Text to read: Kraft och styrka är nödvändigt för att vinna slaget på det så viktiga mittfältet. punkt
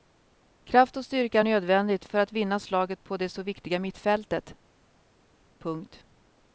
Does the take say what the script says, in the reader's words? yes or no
yes